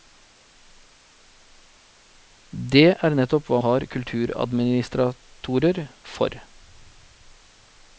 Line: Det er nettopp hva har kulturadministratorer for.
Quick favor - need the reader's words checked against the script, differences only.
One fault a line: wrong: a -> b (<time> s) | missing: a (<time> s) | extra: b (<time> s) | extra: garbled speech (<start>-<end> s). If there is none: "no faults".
no faults